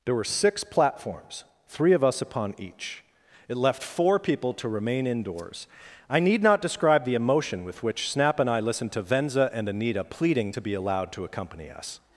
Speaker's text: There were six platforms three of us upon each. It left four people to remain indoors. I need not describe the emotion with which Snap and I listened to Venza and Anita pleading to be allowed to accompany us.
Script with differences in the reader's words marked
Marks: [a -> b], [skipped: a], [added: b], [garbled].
There were six platforms three of us upon each. It left four people to remain indoors. I need not describe the emotion with which Snap and I listened to Venza and Anita pleading to be allowed to accompany us.